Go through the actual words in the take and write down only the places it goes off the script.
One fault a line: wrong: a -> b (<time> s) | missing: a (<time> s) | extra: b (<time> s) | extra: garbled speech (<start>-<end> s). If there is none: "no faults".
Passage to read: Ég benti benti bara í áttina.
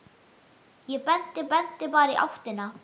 no faults